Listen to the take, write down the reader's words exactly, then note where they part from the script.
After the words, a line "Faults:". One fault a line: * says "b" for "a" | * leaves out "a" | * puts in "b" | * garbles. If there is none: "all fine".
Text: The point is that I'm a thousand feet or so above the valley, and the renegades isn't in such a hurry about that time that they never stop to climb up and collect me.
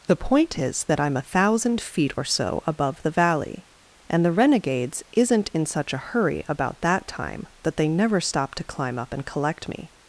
The point is that I'm a thousand feet or so above the valley, and the renegades isn't in such a hurry about that time that they never stop to climb up and collect me.
Faults:
all fine